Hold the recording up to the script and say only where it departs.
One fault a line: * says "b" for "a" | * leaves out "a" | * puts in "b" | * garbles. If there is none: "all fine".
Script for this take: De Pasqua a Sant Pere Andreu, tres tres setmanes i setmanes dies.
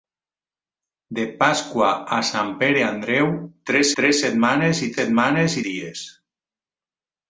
all fine